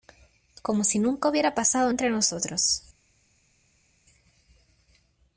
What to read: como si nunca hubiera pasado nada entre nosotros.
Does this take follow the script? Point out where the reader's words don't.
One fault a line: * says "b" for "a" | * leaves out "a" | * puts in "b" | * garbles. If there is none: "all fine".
* leaves out "nada"